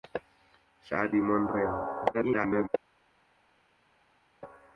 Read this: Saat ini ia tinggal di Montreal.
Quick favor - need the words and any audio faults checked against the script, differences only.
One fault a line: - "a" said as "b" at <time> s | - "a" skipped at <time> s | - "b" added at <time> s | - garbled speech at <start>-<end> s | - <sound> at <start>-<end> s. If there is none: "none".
- "ini ia tinggal" skipped at 1.1 s
- garbled speech at 2.1-2.7 s